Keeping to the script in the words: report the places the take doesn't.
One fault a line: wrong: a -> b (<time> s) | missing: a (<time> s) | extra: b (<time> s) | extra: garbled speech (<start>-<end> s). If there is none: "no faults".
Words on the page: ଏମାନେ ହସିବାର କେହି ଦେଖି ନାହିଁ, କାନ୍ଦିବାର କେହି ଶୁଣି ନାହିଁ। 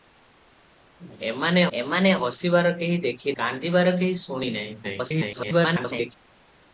extra: ଏମାନେ (1.7 s)
missing: ନାହିଁ (3.3 s)
extra: garbled speech (4.8-6.2 s)